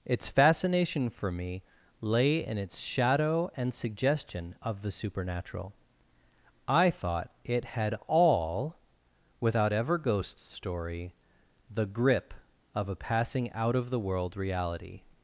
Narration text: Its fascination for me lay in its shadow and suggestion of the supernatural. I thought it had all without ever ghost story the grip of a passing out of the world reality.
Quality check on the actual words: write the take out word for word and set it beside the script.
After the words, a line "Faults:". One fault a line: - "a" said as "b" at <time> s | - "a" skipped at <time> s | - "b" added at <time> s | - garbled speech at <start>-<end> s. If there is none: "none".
Its fascination for me lay in its shadow and suggestion of the supernatural. I thought it had all without ever ghost story the grip of a passing out of the world reality.
Faults:
none